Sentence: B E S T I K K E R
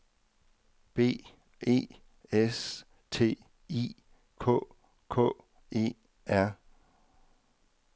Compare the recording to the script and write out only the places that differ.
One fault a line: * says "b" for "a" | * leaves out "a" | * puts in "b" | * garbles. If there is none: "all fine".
all fine